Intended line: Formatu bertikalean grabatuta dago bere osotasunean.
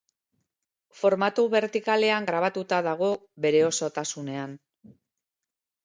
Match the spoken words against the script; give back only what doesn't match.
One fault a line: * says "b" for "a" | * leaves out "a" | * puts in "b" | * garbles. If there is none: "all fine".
all fine